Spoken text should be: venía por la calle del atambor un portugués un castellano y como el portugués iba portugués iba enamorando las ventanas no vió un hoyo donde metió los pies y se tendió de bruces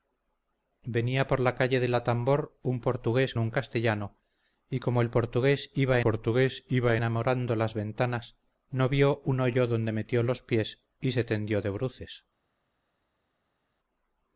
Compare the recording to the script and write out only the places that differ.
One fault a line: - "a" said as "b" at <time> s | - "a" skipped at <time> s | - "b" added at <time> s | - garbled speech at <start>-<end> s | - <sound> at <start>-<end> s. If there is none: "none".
none